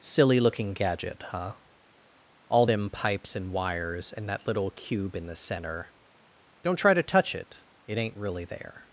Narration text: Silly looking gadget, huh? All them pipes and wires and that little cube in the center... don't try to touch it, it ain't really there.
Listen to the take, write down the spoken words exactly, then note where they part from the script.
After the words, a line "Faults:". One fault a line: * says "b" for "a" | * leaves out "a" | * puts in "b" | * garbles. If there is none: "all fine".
Silly looking gadget, huh? All them pipes and wires and that little cube in the center... don't try to touch it, it ain't really there.
Faults:
all fine